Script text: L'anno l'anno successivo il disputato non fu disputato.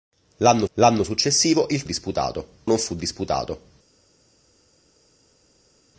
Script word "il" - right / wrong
right